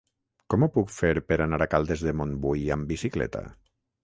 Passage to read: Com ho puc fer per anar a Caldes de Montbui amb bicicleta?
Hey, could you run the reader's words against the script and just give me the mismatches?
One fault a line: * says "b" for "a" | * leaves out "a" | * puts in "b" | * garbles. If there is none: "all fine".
all fine